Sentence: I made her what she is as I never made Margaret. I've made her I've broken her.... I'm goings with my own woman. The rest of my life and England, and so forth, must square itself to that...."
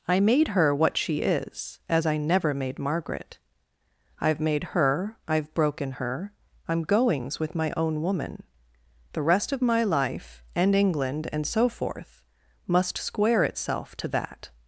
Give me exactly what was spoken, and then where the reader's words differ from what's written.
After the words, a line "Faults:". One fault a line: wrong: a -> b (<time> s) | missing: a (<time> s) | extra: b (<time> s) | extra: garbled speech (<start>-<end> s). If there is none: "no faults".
I made her what she is as I never made Margaret. I've made her I've broken her.... I'm goings with my own woman. The rest of my life and England, and so forth, must square itself to that...."
Faults:
no faults